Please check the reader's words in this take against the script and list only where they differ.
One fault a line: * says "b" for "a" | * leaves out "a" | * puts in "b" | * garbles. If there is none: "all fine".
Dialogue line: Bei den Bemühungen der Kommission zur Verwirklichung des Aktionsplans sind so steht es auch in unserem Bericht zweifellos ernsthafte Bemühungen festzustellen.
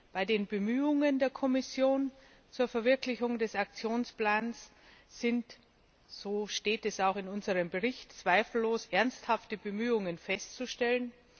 all fine